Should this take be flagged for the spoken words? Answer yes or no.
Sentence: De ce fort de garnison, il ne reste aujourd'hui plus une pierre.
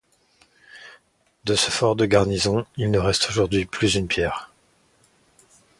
no